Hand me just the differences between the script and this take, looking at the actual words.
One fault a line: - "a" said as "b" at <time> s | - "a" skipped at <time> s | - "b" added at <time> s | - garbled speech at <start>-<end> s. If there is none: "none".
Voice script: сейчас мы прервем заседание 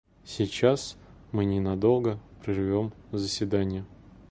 - "ненадолго" added at 1.4 s